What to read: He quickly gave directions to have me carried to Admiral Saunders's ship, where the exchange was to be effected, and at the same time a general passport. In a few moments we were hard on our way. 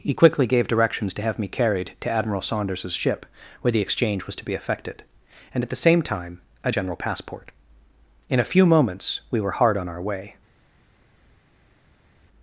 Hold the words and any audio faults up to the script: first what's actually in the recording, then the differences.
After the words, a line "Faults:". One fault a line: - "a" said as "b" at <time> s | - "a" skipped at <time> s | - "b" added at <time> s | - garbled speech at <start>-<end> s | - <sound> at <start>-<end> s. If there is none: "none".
He quickly gave directions to have me carried to Admiral Saunders's ship, where the exchange was to be effected, and at the same time a general passport. In a few moments we were hard on our way.
Faults:
none